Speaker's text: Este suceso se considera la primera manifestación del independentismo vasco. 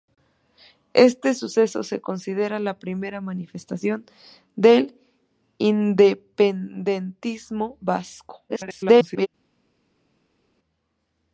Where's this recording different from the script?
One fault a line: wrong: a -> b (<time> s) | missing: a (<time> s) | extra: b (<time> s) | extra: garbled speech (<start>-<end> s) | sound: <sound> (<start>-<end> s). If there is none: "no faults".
extra: garbled speech (8.5-9.3 s)